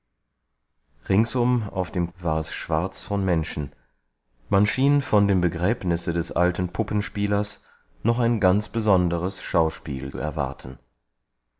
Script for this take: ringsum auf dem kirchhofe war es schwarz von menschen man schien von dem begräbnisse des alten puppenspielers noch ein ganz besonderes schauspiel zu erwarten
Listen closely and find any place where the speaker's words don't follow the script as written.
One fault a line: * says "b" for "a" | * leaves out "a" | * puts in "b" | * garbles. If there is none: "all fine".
* leaves out "kirchhofe"
* leaves out "zu"